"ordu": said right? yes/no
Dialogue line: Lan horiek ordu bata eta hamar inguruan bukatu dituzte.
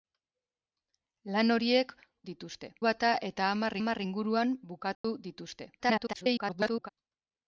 no